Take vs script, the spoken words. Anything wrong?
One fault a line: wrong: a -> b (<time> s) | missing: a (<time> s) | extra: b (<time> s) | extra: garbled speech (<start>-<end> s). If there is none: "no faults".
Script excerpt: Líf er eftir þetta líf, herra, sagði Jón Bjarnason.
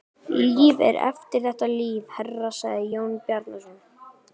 no faults